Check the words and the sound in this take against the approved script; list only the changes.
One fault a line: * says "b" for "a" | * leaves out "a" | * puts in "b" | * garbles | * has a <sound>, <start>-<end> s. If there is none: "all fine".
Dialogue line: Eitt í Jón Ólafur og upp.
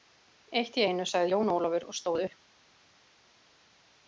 * puts in "einu sagði"
* puts in "stóð"